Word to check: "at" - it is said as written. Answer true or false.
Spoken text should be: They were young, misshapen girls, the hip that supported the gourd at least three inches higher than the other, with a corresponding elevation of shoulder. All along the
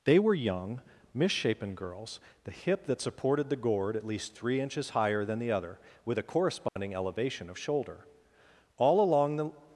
true